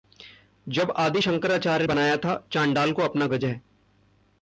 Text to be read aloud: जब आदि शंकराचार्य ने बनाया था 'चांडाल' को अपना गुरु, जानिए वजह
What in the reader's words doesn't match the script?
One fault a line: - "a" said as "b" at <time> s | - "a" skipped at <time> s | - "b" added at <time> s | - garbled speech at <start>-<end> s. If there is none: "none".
- "ने" skipped at 1.9 s
- "गुरु जानिए" skipped at 3.3 s